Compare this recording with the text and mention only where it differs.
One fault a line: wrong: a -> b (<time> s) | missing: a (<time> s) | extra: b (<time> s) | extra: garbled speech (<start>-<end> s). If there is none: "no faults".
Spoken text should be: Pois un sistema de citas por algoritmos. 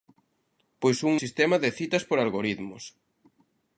no faults